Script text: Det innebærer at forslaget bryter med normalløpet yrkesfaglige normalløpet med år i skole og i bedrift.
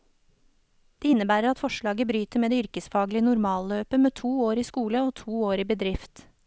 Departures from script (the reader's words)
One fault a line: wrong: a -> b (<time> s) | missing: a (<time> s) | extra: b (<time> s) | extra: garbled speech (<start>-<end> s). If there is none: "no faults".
wrong: normalløpet -> det (2.5 s)
extra: to (4.1 s)
extra: to år (5.2 s)